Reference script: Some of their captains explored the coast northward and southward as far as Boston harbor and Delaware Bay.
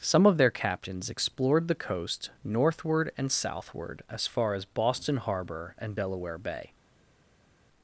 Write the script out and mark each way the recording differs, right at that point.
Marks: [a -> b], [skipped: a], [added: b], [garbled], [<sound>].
Some of their captains explored the coast northward and southward as far as Boston harbor and Delaware Bay.